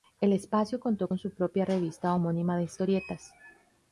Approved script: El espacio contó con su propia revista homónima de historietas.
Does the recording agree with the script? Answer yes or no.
yes